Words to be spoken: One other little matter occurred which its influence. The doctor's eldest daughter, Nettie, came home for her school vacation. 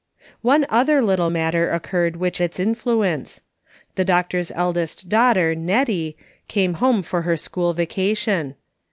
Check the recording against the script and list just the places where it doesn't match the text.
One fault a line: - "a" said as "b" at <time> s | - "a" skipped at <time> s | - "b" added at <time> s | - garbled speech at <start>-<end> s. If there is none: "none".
none